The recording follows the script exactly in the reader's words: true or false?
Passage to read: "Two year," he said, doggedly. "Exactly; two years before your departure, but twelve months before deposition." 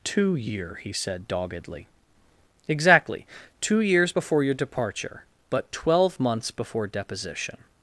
true